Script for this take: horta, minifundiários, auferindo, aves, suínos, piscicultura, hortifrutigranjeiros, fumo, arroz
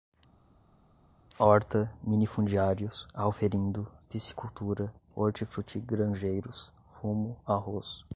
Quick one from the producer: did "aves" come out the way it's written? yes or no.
no